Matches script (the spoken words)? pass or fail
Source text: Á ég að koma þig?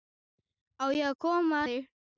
pass